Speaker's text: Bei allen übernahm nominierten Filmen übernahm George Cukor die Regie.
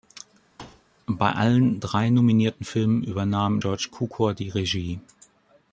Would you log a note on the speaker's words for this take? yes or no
yes